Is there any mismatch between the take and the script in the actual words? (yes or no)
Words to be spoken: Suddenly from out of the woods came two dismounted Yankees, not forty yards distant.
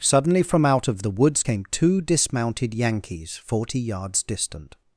yes